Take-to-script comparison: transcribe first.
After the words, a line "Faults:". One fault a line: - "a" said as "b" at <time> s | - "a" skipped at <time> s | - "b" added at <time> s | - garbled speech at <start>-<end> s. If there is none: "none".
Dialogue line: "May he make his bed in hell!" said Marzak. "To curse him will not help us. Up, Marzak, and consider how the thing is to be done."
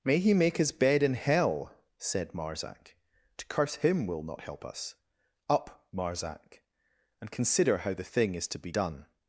"May he make his bed in hell!" said Marzak. "To curse him will not help us. Up, Marzak, and consider how the thing is to be done."
Faults:
none